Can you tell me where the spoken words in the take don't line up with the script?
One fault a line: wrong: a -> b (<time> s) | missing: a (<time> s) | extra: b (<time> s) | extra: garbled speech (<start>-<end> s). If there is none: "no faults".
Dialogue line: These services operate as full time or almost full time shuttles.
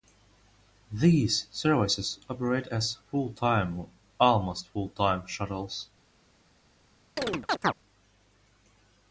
no faults